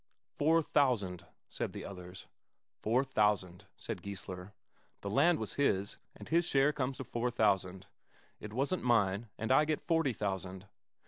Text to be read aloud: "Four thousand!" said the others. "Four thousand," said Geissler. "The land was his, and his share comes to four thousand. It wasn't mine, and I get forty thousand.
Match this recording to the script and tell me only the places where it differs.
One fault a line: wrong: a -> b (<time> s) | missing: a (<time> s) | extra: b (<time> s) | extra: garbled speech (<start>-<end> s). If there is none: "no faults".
no faults